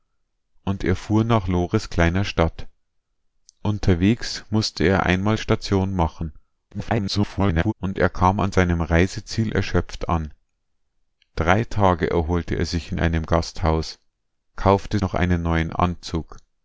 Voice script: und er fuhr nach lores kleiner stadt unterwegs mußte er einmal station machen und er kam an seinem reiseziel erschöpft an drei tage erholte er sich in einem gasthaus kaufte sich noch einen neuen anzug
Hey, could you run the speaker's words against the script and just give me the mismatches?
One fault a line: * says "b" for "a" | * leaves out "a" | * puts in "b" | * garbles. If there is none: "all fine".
* garbles
* leaves out "sich"